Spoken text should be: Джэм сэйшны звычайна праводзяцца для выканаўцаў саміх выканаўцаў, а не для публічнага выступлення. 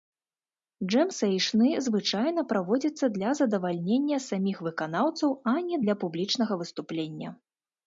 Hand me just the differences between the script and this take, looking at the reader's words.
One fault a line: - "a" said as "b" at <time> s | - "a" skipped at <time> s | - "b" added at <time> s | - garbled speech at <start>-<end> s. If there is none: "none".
- "выканаўцаў" said as "задавальнення" at 3.4 s